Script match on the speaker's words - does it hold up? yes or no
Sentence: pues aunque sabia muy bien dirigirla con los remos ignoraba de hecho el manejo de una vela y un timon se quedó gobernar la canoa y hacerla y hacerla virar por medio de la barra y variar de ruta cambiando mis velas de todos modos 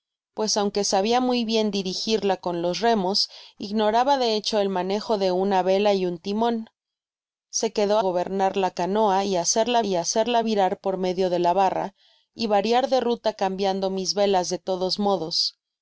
yes